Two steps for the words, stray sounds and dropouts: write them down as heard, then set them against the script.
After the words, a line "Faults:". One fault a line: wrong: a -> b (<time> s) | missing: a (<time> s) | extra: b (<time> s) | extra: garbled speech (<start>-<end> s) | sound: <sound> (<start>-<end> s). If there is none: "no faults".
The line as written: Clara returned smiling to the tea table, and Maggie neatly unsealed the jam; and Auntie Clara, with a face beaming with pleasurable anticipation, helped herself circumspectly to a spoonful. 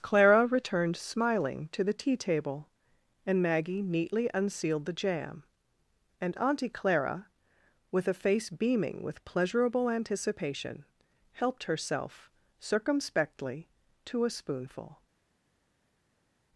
Clara returned smiling to the tea table, and Maggie neatly unsealed the jam; and Auntie Clara, with a face beaming with pleasurable anticipation, helped herself circumspectly to a spoonful.
Faults:
no faults